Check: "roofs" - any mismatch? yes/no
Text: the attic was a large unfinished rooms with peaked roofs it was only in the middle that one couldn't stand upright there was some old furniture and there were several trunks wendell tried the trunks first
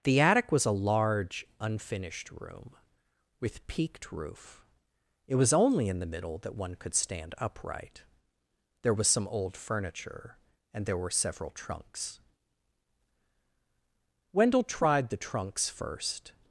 yes